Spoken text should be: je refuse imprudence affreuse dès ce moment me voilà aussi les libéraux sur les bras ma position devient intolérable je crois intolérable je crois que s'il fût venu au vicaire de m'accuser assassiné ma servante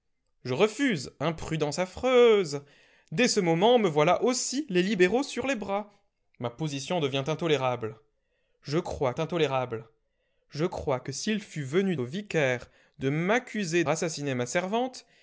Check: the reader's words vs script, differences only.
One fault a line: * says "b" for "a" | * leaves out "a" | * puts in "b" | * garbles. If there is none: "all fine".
all fine